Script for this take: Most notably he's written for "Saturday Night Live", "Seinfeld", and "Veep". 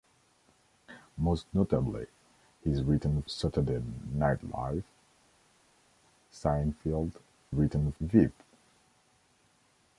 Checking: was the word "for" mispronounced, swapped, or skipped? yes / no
yes